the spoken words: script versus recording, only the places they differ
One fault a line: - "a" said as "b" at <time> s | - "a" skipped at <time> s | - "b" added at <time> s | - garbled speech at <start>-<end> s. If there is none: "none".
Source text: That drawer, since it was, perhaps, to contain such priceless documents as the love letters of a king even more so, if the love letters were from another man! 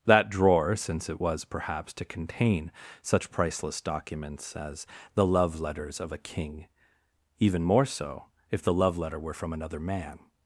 - "letters" said as "letter" at 9.0 s